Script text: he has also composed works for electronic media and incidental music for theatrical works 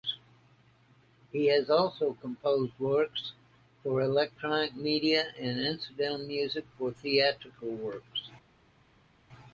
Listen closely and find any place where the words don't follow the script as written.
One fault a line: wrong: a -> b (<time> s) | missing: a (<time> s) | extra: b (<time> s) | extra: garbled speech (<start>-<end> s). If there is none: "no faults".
no faults